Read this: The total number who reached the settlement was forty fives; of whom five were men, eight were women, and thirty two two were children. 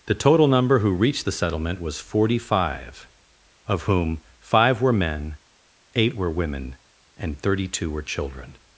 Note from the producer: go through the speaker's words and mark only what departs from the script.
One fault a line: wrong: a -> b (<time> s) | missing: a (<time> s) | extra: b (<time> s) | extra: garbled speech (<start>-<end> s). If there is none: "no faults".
wrong: fives -> five (2.4 s)
missing: two (7.9 s)